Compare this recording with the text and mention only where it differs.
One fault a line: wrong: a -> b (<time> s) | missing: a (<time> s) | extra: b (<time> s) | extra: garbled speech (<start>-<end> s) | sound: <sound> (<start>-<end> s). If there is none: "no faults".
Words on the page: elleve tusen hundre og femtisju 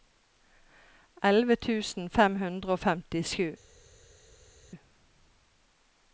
extra: fem (2.1 s)